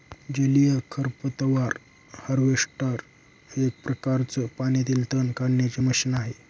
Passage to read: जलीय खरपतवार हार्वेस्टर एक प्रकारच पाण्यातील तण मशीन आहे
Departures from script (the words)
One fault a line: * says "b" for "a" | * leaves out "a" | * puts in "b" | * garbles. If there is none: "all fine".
* puts in "काढण्याचे"